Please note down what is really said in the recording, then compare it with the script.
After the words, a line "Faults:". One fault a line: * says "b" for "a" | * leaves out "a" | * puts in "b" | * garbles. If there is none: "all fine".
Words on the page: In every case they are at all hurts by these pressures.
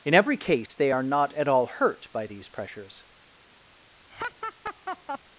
In every case they are not at all hurt by these pressures.
Faults:
* puts in "not"
* says "hurt" for "hurts"